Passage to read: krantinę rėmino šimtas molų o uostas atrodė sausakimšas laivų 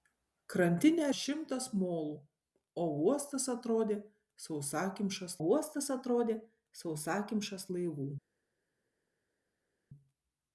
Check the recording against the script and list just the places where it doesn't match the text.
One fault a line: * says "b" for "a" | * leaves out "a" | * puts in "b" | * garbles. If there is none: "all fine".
* leaves out "rėmino"
* puts in "uostas atrodė sausakimšas"